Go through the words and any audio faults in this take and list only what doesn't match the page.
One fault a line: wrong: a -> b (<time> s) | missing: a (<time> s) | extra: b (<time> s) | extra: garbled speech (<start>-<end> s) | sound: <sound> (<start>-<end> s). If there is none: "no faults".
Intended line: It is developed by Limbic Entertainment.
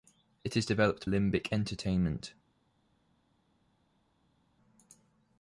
missing: by (1.1 s)